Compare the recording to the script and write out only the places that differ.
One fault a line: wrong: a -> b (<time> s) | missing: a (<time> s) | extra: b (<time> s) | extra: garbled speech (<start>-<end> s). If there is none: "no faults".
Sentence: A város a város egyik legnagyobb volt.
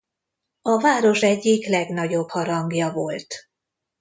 missing: a város (1.2 s)
extra: harangja (2.3 s)